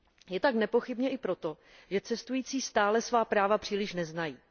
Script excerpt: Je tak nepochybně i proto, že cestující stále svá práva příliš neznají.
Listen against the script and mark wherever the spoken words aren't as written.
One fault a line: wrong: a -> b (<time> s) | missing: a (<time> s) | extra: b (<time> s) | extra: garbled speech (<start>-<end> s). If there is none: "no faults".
no faults